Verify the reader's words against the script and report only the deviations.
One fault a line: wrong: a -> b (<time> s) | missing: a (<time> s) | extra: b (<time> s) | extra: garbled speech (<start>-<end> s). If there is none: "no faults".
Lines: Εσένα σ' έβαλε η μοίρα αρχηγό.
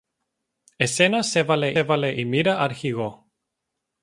extra: έβαλε (1.7 s)